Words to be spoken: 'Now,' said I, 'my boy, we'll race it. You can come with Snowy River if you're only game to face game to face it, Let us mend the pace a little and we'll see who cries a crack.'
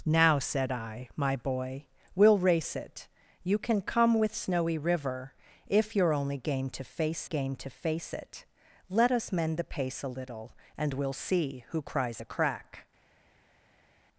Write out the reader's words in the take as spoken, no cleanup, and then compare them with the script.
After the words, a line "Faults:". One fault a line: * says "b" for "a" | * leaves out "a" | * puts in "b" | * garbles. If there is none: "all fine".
'Now,' said I, 'my boy, we'll race it. You can come with Snowy River if you're only game to face game to face it, Let us mend the pace a little and we'll see who cries a crack.'
Faults:
all fine